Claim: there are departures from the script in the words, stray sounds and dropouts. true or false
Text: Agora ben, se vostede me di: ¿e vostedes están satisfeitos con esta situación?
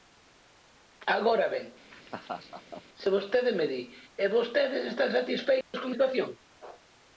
true